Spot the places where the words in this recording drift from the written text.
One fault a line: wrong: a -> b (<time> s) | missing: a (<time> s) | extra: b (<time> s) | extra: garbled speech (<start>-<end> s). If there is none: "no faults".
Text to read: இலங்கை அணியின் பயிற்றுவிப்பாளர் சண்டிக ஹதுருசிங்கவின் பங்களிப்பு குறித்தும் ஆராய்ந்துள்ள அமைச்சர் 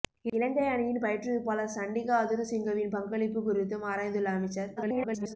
extra: garbled speech (4.8-5.4 s)